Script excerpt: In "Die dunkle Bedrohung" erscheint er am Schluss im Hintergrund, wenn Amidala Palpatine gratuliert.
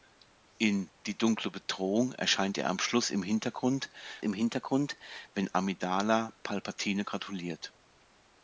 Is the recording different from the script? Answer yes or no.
yes